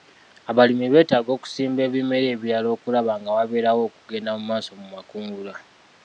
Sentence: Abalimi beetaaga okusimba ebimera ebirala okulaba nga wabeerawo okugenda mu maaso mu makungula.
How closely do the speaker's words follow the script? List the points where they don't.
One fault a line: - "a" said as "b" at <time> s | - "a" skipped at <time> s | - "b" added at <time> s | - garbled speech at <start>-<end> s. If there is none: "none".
none